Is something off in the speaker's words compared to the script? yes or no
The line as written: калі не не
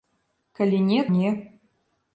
no